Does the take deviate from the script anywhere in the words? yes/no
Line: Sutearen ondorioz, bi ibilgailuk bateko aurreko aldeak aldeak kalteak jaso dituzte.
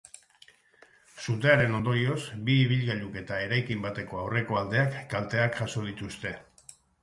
yes